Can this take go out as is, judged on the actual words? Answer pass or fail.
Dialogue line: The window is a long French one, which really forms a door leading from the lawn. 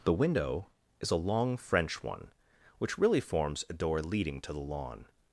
fail